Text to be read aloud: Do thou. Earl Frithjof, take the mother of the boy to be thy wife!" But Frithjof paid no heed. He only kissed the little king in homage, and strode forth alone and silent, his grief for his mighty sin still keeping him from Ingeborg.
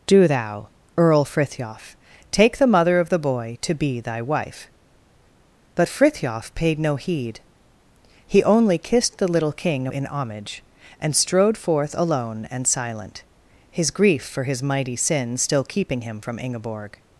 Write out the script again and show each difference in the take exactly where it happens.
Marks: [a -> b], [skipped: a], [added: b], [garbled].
Do thou. Earl Frithjof, take the mother of the boy to be thy wife!" But Frithjof paid no heed. He only kissed the little king in homage, and strode forth alone and silent, his grief for his mighty sin still keeping him from Ingeborg.